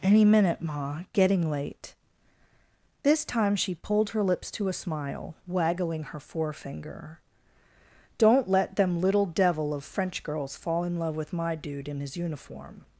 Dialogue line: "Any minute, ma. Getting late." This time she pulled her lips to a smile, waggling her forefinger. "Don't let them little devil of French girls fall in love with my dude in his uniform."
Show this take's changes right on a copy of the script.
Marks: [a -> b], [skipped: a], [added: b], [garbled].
"Any minute, ma. Getting late." This time she pulled her lips to a smile, waggling her forefinger. "Don't let them little devil of French girls fall in love with my dude in his uniform."